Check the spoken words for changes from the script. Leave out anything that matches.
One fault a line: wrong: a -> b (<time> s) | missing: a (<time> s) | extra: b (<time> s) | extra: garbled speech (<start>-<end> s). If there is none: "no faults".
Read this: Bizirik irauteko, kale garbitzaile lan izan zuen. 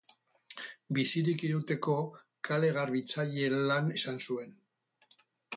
no faults